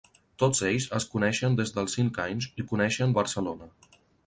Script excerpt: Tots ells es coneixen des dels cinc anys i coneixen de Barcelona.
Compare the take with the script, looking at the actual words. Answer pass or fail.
pass